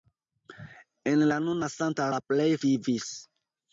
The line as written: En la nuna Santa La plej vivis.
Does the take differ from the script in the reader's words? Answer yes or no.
no